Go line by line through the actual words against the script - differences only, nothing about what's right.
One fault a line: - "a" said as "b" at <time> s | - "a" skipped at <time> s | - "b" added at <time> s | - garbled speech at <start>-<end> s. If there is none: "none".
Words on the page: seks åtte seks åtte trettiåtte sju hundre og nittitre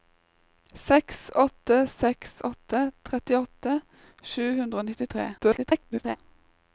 - garbled speech at 5.4-6.2 s